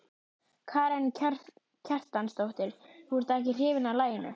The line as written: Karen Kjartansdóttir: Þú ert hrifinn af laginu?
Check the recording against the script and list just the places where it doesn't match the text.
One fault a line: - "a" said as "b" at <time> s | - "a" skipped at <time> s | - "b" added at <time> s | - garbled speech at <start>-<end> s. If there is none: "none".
- "ekki" added at 3.4 s